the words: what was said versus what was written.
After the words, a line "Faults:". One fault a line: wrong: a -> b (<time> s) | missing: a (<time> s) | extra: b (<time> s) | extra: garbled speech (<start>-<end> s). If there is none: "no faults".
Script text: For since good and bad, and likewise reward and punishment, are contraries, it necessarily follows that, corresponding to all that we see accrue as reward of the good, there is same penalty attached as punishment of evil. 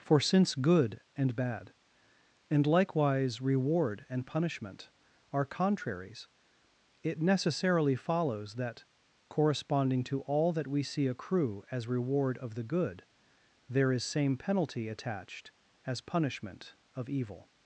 For since good and bad, and likewise reward and punishment, are contraries, it necessarily follows that, corresponding to all that we see accrue as reward of the good, there is same penalty attached as punishment of evil.
Faults:
no faults